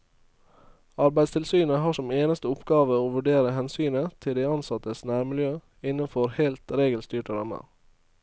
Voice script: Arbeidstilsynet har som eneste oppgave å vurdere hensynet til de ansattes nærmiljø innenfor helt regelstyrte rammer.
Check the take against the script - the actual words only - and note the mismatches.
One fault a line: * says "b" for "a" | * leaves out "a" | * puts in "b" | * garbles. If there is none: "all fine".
all fine